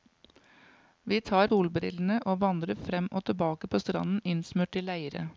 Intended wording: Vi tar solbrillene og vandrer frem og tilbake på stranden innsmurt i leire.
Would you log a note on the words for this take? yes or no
no